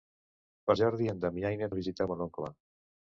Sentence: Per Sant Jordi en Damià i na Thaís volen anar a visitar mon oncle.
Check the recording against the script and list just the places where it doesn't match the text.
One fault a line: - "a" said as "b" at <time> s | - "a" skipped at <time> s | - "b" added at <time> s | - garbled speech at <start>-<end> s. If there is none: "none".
- "Sant" skipped at 0.8 s
- "Thaís volen anar" skipped at 1.7 s